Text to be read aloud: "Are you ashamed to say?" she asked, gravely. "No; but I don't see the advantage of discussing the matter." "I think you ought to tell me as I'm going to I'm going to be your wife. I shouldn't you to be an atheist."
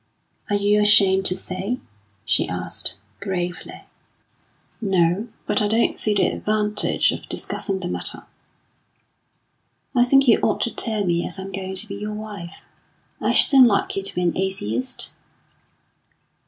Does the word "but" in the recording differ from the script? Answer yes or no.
no